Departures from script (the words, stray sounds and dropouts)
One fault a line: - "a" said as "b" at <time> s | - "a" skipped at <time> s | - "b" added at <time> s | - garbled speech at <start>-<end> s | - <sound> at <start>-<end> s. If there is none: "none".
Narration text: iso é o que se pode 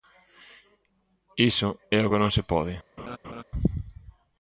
- "non" added at 2.2 s
- laugh at 3.0-3.4 s